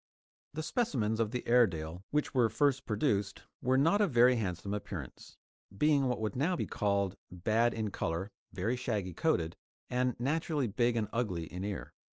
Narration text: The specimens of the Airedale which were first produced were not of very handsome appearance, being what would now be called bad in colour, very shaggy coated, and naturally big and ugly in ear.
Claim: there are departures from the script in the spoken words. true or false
false